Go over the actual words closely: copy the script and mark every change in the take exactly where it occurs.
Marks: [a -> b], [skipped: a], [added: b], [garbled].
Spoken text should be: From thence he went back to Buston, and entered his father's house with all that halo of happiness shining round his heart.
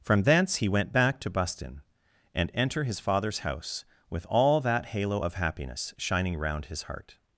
From thence he went back to Buston, and [entered -> enter] his father's house with all that halo of happiness shining round his heart.